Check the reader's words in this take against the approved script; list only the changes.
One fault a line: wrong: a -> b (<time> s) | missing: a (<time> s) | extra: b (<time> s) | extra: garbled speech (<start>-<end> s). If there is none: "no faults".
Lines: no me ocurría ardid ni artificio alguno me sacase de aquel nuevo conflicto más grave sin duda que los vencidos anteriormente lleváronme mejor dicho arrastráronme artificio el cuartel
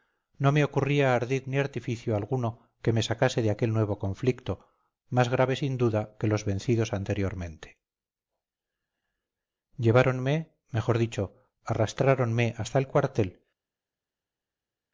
extra: que (2.8 s)
wrong: artificio -> hasta (12.6 s)